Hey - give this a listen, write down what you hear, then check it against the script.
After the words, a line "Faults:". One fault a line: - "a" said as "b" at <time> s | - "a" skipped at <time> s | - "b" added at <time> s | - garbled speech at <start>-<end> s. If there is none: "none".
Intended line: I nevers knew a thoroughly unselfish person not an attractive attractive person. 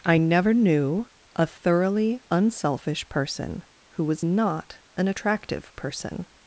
I never knew a thoroughly unselfish person who was not an attractive person.
Faults:
- "nevers" said as "never" at 0.2 s
- "who was" added at 3.9 s
- "attractive" skipped at 5.8 s